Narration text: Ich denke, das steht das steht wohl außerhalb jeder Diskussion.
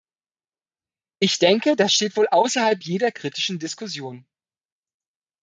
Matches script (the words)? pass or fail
fail